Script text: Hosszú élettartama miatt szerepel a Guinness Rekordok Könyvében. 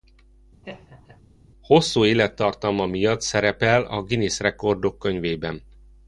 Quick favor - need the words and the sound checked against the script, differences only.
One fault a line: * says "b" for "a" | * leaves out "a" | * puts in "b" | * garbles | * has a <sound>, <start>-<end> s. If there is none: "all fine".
* has a laugh, 0.6-1.2 s